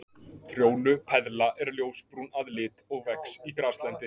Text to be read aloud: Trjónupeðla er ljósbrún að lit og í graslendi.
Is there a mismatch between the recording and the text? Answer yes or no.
yes